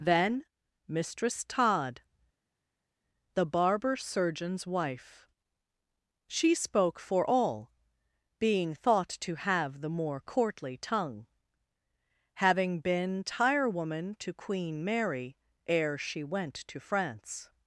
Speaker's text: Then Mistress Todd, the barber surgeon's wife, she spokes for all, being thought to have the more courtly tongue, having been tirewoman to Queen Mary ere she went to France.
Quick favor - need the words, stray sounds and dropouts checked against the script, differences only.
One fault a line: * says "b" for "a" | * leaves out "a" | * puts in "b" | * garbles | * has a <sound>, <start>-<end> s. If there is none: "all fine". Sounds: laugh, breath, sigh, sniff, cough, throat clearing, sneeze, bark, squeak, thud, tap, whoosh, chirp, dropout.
* says "spoke" for "spokes"